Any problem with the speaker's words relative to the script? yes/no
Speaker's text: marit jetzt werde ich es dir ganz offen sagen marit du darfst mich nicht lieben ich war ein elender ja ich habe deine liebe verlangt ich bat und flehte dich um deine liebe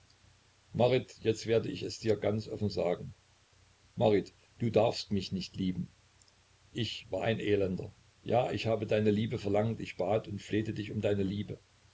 no